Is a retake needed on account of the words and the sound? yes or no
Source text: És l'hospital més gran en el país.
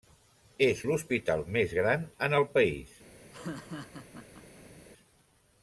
yes